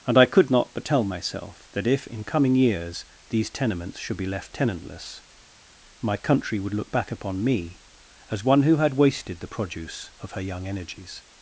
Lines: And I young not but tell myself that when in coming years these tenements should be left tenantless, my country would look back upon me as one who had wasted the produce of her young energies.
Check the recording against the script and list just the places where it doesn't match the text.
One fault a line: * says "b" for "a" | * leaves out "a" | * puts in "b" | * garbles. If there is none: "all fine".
* says "could" for "young"
* says "if" for "when"